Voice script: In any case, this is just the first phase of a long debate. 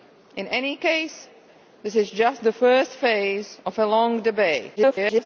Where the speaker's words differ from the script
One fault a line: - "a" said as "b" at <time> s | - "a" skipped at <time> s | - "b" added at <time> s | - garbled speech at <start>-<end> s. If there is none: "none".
- garbled speech at 4.8-5.3 s